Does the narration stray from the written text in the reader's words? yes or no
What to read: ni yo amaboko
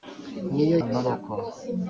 no